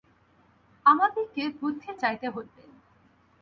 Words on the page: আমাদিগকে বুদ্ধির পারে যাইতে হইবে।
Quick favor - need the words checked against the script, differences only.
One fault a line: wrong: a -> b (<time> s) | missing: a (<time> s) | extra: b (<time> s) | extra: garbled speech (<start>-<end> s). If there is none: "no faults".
missing: পারে (1.9 s)